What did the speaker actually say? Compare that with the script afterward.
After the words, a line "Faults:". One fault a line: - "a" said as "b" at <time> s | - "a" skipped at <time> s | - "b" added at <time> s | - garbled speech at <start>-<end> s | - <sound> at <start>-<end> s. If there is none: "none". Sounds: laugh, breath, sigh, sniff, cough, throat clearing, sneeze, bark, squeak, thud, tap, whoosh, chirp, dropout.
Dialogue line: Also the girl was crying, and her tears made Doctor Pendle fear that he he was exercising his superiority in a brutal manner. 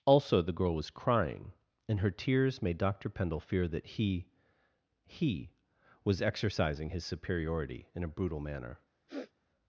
Also the girl was crying, and her tears made Doctor Pendle fear that he he was exercising his superiority in a brutal manner.
Faults:
- sniff at 9.1-9.3 s